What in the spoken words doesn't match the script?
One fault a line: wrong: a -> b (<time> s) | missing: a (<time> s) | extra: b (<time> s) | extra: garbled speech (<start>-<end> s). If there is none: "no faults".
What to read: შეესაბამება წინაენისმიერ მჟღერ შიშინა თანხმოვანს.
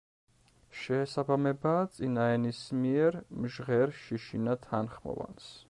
no faults